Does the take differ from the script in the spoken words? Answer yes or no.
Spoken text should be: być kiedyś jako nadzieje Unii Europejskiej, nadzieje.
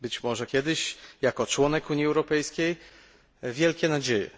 yes